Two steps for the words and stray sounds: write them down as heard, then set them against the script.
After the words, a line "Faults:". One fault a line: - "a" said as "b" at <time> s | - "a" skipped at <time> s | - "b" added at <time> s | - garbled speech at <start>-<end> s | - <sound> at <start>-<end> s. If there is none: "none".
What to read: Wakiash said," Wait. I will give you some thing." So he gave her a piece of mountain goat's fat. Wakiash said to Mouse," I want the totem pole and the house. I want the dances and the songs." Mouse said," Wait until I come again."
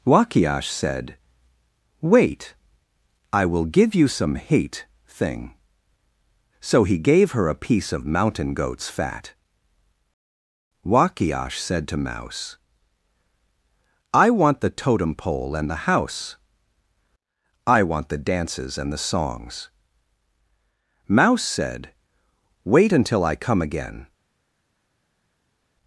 Wakiash said," Wait. I will give you some hate thing." So he gave her a piece of mountain goat's fat. Wakiash said to Mouse," I want the totem pole and the house. I want the dances and the songs." Mouse said," Wait until I come again."
Faults:
- "hate" added at 4.3 s